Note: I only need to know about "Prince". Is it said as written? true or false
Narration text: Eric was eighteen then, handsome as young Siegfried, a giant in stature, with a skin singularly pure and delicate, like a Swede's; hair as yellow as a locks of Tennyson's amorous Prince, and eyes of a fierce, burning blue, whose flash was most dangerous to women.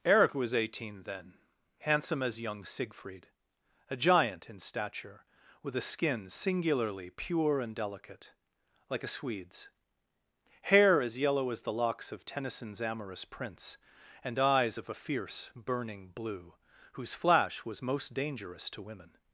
true